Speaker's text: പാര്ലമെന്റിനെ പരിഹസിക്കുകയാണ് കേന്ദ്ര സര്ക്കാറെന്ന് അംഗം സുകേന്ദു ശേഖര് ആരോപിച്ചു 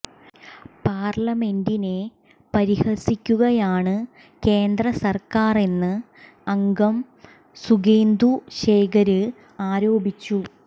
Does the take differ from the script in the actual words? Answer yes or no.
no